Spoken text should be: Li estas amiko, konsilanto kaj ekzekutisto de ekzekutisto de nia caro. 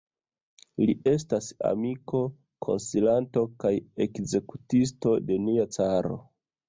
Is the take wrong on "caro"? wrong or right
right